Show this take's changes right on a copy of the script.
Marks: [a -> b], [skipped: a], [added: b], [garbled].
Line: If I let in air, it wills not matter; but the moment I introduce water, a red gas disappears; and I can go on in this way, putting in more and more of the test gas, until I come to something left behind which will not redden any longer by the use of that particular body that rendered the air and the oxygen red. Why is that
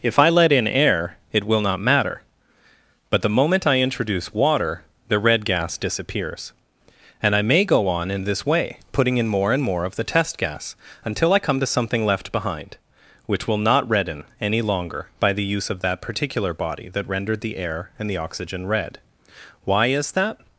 If I let in air, it [wills -> will] not matter; but the moment I introduce water, [a -> the] red gas disappears; and I [can -> may] go on in this way, putting in more and more of the test gas, until I come to something left behind which will not redden any longer by the use of that particular body that rendered the air and the oxygen red. Why is that